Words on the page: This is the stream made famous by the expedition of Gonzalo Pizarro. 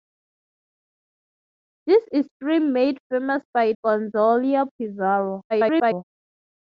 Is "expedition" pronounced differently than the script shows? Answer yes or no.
yes